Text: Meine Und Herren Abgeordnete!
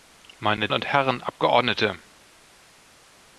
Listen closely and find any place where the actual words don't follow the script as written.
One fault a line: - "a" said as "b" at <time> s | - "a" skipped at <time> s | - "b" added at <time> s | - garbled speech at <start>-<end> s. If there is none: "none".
none